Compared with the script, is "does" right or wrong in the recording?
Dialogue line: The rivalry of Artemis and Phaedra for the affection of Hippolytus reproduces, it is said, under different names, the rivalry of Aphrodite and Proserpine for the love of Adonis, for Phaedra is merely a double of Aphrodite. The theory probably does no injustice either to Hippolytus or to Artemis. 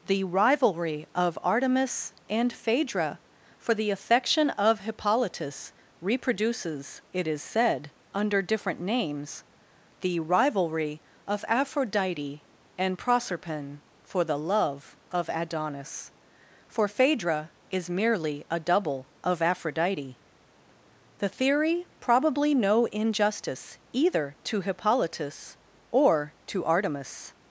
wrong